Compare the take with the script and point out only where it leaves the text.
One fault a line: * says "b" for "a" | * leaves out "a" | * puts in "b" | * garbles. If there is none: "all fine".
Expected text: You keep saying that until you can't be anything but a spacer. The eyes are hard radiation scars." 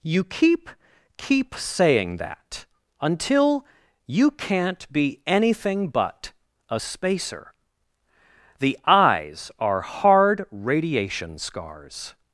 * puts in "keep"